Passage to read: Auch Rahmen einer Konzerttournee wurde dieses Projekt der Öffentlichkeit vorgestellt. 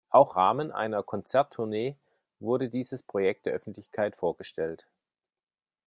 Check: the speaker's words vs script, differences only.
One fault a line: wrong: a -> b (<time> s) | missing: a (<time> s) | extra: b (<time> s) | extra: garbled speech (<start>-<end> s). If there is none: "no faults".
no faults